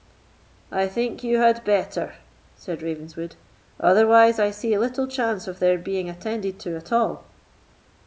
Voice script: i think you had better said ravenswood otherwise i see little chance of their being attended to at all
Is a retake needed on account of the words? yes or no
no